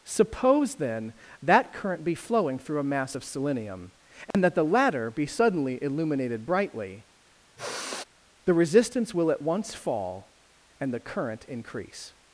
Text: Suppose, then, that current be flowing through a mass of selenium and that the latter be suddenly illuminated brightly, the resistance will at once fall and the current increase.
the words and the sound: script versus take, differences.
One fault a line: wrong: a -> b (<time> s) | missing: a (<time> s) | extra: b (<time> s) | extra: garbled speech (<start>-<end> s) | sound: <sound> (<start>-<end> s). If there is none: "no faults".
sound: dropout (4.3-4.3 s)
sound: sigh (7.6-8.0 s)